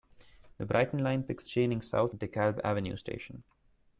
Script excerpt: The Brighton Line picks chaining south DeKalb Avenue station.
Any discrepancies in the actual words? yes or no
no